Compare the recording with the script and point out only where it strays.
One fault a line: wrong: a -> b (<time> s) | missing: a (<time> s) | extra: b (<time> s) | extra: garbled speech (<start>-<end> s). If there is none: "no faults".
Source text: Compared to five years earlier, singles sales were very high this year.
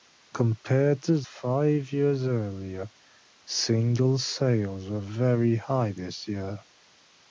no faults